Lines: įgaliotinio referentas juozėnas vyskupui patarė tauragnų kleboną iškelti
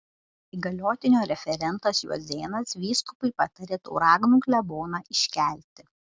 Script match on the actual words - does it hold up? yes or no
yes